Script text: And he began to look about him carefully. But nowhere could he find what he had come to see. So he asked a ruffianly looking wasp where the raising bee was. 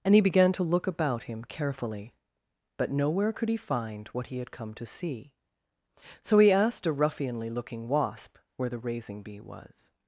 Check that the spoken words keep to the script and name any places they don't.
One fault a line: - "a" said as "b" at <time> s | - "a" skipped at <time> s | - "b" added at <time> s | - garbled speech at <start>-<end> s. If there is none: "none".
none